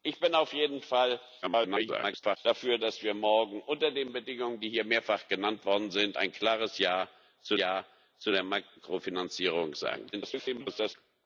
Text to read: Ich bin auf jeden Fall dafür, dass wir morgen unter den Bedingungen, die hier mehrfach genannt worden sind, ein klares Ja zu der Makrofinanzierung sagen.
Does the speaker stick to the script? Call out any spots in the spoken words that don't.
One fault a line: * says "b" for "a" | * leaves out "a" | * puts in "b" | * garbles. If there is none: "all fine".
* garbles
* puts in "Ja zu"
* garbles